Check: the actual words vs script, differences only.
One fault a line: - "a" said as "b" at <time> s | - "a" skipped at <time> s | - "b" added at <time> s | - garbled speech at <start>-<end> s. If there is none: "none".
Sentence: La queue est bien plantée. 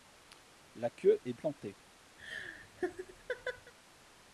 - "bien" skipped at 1.3 s